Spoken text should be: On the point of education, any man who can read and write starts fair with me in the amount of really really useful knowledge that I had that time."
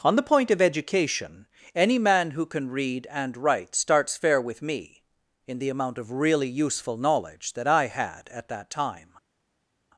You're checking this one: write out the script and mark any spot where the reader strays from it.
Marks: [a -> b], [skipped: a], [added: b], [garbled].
On the point of education, any man who can read and write starts fair with me in the amount of really [skipped: really] useful knowledge that I had [added: at] that time."